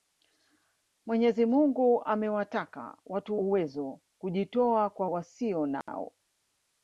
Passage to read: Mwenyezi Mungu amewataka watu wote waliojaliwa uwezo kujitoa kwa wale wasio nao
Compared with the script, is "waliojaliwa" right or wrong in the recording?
wrong